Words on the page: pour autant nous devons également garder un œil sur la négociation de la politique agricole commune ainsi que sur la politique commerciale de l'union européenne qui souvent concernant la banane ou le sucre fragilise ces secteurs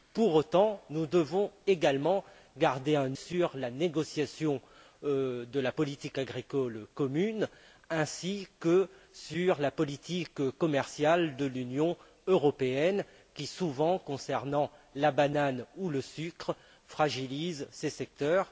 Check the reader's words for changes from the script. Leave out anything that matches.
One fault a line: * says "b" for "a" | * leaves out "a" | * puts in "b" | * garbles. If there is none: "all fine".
* leaves out "œil"